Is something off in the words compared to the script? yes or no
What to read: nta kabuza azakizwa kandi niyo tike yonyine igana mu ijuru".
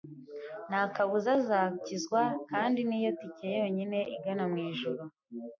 no